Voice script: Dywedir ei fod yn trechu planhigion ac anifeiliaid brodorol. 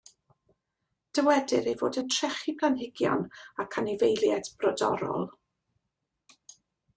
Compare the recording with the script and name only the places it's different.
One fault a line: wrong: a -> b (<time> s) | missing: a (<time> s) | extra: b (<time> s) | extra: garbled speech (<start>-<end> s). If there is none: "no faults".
no faults